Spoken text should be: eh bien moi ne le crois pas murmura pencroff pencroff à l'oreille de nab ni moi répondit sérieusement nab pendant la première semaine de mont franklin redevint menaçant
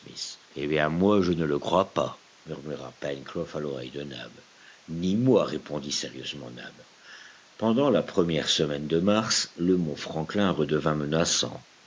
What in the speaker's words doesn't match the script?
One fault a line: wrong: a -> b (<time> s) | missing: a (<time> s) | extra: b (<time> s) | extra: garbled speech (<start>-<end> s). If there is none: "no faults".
extra: je (1.2 s)
missing: pencroff (3.5 s)
extra: mars le (9.0 s)